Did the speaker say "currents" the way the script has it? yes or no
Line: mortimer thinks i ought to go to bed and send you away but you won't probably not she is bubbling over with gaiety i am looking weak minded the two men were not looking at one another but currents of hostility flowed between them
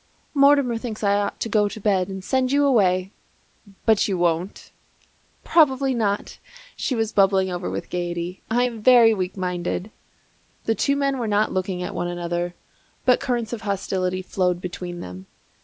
yes